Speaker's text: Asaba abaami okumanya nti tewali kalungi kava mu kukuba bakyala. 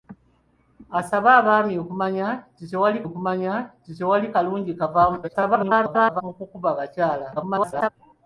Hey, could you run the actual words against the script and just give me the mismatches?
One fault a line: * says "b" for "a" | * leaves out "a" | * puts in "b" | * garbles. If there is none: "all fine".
* puts in "okumanya nti tewali"
* garbles
* garbles